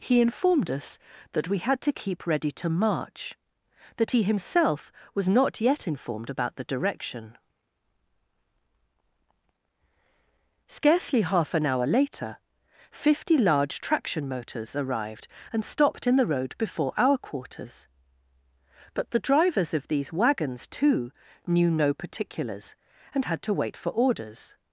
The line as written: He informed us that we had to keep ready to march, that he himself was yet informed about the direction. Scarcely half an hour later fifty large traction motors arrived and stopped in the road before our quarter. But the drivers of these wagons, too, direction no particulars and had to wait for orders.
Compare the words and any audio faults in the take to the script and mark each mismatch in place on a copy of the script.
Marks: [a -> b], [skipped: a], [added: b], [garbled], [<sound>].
He informed us that we had to keep ready to march, that he himself was [added: not] yet informed about the direction. Scarcely half an hour later fifty large traction motors arrived and stopped in the road before our [quarter. -> quarters] But the drivers of these wagons, too, [direction -> knew] no particulars and had to wait for orders.